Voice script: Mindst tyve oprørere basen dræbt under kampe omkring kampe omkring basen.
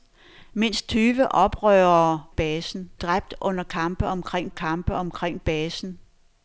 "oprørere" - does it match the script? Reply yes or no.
yes